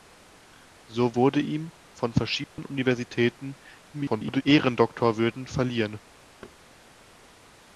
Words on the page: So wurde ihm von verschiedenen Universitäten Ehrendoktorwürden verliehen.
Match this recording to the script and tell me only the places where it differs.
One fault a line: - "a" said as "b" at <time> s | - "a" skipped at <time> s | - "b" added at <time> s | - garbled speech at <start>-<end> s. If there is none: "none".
- garbled speech at 3.9-4.4 s